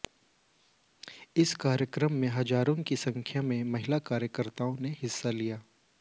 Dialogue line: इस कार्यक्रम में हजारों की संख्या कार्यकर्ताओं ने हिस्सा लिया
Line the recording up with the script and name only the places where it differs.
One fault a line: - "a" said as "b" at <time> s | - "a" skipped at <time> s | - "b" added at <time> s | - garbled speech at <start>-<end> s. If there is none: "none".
- "में महिला" added at 3.4 s